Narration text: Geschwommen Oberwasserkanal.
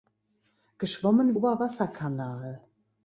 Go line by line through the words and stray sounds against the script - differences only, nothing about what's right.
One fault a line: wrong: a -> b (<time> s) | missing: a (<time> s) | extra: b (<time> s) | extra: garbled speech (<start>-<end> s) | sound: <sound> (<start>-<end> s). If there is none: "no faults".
no faults